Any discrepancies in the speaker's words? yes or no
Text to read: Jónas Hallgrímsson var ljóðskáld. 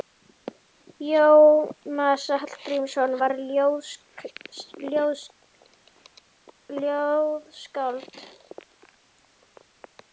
no